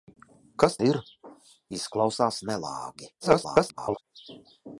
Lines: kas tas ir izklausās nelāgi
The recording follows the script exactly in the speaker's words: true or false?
false